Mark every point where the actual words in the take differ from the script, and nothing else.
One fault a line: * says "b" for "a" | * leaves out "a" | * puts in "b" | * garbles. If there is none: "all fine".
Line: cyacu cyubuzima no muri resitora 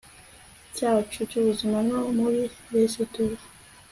all fine